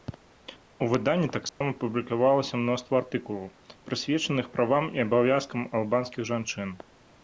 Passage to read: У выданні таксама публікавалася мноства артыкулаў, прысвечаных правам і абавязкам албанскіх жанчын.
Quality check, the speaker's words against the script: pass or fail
pass